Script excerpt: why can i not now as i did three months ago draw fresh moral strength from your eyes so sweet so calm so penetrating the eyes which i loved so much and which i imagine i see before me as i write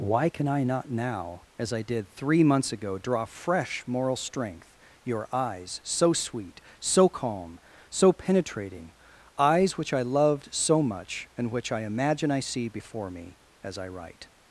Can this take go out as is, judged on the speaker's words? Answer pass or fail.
fail